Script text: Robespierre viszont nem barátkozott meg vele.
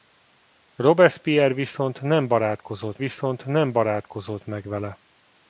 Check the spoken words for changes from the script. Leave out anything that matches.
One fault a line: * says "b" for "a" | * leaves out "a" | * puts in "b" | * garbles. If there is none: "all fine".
* puts in "viszont nem barátkozott"